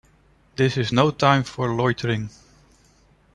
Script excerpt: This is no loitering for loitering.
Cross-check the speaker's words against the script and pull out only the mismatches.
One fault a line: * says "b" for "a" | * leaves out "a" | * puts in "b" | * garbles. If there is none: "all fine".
* says "time" for "loitering"